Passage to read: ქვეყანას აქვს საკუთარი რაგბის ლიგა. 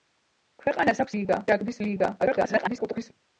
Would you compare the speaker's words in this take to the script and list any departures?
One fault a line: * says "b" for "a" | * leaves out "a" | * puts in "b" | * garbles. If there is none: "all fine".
* says "ლიგა" for "საკუთარი"
* garbles